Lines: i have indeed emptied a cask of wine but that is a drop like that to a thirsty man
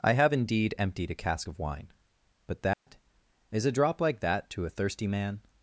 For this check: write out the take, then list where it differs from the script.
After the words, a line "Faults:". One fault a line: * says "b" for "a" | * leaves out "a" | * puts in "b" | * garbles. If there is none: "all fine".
i have indeed emptied a cask of wine but that is a drop like that to a thirsty man
Faults:
all fine